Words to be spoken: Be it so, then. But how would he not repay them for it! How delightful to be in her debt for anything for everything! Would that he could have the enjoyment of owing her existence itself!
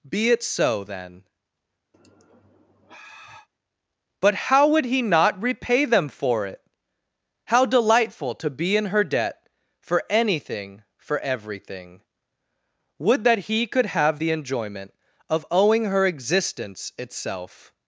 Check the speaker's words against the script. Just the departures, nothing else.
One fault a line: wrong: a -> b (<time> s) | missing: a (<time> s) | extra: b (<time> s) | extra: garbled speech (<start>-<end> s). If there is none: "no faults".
no faults